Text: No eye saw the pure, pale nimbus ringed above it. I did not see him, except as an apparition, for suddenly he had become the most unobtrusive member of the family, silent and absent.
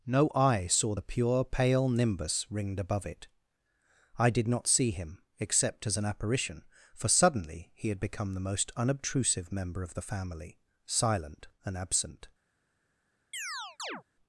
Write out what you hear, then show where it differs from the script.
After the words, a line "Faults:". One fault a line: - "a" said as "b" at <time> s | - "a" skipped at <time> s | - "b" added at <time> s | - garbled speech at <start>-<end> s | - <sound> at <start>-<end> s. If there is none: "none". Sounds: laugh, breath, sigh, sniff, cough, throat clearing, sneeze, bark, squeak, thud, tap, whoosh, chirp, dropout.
No eye saw the pure, pale nimbus ringed above it. I did not see him, except as an apparition, for suddenly he had become the most unobtrusive member of the family, silent and absent.
Faults:
- chirp at 13.3-14.0 s